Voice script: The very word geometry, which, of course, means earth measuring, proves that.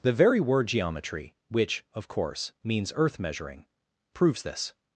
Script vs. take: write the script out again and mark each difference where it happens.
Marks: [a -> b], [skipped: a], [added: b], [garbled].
The very word geometry, which, of course, means earth measuring, proves [that. -> this]